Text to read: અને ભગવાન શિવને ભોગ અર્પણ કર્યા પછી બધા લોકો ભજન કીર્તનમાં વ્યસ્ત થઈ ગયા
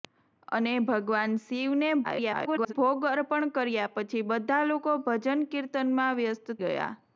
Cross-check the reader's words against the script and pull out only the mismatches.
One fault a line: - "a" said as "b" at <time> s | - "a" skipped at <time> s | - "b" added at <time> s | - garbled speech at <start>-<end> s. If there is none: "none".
- garbled speech at 2.0-2.7 s
- "થઈ" skipped at 6.6 s